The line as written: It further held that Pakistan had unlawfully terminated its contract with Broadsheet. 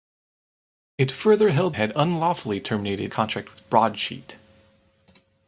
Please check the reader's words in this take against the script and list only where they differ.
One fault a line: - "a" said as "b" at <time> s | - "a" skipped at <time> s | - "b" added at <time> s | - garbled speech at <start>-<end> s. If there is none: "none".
- "that Pakistan" skipped at 1.7 s
- "its" skipped at 3.1 s